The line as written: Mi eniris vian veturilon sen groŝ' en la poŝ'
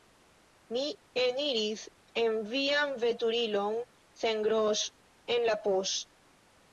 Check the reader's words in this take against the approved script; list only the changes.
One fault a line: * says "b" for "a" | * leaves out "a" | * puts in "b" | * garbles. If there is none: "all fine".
* puts in "en"